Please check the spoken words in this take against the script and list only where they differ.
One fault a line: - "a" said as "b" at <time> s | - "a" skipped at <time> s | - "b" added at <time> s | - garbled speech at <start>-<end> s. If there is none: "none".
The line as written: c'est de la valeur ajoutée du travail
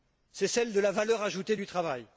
- "celle" added at 0.5 s